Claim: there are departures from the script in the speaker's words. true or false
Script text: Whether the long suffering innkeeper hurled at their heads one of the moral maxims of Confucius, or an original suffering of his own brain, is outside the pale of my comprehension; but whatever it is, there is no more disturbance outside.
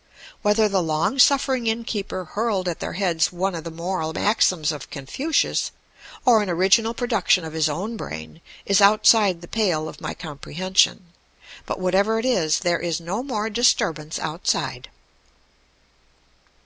true